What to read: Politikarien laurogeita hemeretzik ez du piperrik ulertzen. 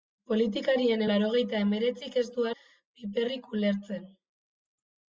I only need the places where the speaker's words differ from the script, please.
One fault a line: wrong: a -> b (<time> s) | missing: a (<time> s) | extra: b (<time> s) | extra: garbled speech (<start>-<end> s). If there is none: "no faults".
no faults